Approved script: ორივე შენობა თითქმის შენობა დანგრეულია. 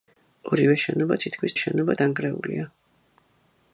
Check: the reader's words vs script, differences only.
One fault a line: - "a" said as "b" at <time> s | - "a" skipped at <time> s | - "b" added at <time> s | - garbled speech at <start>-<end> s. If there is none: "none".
none